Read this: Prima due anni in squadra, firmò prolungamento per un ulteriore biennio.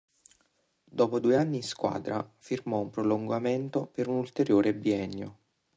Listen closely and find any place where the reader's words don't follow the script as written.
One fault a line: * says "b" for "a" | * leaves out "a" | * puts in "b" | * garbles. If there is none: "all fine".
* says "Dopo" for "Prima"
* puts in "un"